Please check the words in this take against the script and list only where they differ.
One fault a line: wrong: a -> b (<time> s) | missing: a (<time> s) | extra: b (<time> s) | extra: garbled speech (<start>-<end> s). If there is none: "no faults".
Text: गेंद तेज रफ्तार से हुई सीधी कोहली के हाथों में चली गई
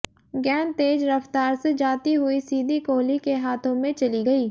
extra: जाती (1.7 s)